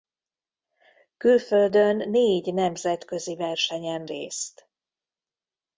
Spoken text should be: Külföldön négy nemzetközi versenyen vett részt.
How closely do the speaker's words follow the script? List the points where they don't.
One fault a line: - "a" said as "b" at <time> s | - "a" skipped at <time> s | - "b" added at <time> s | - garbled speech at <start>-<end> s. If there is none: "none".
- "vett" skipped at 4.1 s